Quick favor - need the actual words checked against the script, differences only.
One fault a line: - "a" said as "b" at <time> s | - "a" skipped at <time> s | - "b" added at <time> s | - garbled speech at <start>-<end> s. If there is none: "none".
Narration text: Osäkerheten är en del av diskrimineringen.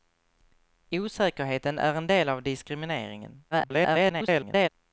- garbled speech at 3.5-4.7 s